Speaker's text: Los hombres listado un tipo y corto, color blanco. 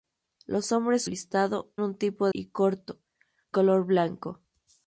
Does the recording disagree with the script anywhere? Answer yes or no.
no